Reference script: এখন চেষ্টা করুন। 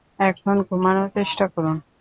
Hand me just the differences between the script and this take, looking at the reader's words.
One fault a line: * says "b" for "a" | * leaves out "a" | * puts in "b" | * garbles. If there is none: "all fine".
* puts in "ঘুমানোর"